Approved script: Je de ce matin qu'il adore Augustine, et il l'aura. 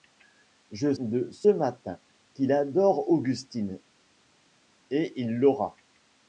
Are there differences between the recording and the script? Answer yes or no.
no